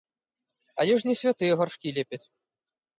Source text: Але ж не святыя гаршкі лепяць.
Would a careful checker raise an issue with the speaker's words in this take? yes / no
no